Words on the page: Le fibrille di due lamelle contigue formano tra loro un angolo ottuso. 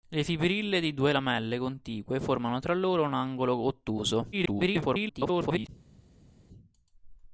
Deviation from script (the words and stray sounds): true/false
true